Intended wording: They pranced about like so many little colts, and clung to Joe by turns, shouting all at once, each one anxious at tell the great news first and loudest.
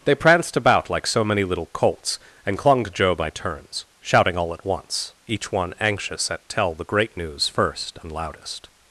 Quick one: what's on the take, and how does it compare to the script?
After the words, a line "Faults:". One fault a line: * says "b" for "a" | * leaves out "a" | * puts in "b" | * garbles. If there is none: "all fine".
They pranced about like so many little colts, and clung to Joe by turns, shouting all at once, each one anxious at tell the great news first and loudest.
Faults:
all fine